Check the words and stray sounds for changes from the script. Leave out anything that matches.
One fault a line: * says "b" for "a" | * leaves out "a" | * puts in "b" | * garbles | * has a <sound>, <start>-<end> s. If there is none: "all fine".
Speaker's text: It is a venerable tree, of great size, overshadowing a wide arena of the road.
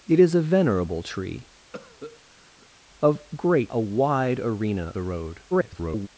* has a cough, 1.7-2.7 s
* leaves out "size overshadowing"
* leaves out "of"
* garbles